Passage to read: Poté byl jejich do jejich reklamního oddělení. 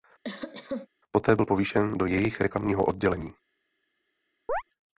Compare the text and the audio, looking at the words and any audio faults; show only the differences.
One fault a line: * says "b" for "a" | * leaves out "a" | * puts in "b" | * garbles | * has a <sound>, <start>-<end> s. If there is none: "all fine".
* has a cough, 0.2-0.9 s
* says "povýšen" for "jejich"
* has a chirp, 4.5-4.6 s